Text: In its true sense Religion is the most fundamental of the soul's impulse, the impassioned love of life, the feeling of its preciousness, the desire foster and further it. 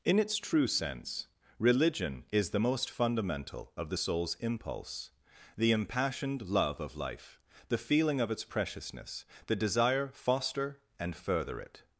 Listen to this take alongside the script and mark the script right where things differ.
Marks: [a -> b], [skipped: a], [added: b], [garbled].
In its true sense Religion is the most fundamental of the soul's impulse, the impassioned love of life, the feeling of its preciousness, the desire foster and further it.